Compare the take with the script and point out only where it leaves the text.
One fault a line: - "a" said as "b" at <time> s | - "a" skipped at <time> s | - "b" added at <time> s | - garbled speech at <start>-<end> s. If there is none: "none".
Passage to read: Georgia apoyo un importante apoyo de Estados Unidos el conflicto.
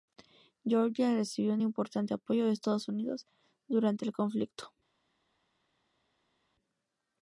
- "apoyo" said as "recibió" at 1.1 s
- "durante" added at 3.7 s